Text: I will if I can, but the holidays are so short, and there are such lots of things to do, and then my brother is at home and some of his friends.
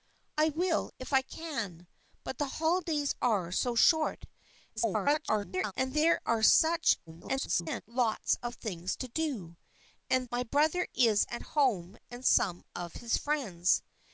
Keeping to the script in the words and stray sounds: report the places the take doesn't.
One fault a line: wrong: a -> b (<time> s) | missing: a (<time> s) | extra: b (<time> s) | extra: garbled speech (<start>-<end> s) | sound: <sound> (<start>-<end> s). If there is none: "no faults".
extra: garbled speech (4.8-5.7 s)
extra: garbled speech (7.1-7.8 s)
missing: then (10.3 s)